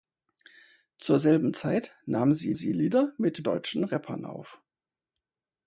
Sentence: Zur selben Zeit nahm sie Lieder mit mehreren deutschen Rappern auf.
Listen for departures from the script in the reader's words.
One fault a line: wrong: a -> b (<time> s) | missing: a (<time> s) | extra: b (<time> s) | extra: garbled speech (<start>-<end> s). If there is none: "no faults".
extra: sie (2.5 s)
missing: mehreren (3.5 s)